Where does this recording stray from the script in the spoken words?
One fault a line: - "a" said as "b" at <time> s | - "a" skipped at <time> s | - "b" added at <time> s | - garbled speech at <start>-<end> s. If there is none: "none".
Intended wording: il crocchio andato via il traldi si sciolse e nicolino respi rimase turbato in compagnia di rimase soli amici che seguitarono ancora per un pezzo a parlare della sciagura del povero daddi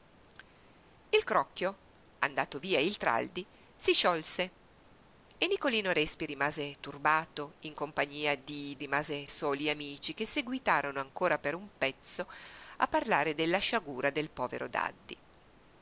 none